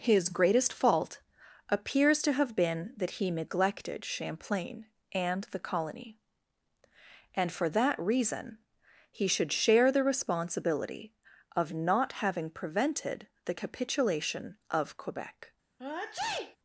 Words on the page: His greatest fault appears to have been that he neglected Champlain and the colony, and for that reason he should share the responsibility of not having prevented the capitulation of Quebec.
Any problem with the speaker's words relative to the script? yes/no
no